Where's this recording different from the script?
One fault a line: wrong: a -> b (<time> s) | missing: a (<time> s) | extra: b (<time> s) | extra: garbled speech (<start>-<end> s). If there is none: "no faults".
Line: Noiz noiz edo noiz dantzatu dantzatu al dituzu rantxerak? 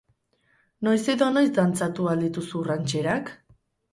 missing: noiz (1.0 s)
missing: dantzatu (2.1 s)